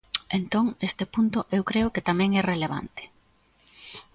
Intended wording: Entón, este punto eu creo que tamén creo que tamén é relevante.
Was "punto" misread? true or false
false